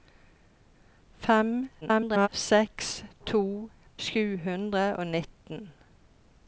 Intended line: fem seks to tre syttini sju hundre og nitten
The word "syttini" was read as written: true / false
false